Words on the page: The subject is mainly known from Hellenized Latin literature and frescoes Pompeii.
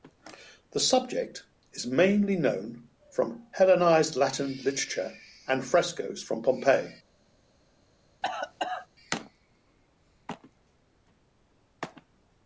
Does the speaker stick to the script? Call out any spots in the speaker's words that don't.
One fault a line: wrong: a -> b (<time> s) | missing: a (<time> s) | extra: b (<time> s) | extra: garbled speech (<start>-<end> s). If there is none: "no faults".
extra: from (6.2 s)